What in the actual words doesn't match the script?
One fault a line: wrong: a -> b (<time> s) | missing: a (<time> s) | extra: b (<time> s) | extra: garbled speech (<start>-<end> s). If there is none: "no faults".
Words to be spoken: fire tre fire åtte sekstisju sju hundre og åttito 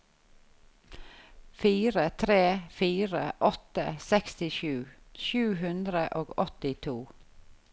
no faults